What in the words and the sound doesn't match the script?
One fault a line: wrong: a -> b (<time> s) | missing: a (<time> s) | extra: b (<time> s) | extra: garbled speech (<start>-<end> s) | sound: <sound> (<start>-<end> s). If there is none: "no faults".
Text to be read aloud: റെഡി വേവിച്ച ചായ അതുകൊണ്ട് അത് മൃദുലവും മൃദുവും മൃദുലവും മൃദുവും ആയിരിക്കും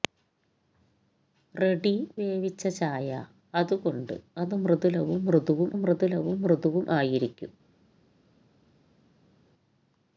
no faults